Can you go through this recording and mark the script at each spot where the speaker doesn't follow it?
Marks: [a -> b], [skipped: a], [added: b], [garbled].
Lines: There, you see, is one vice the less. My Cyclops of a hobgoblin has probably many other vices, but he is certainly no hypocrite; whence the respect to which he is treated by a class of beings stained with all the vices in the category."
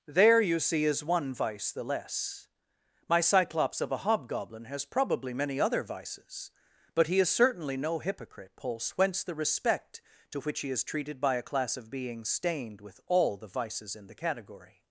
There, you see, is one vice the less. My Cyclops of a hobgoblin has probably many other vices, but he is certainly no hypocrite; [added: pulse] whence the respect to which he is treated by a class of beings stained with all the vices in the category."